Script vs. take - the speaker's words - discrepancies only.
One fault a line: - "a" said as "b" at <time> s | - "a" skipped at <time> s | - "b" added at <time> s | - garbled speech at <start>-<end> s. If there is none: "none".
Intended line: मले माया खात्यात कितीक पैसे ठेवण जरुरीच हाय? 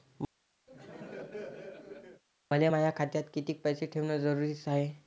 none